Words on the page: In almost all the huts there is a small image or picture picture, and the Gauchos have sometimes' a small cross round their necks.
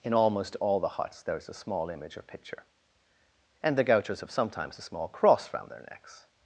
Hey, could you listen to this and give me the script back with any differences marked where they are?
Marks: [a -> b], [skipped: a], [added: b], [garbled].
In almost all the huts there is a small image or picture [skipped: picture,] and the Gauchos have sometimes' a small cross round their necks.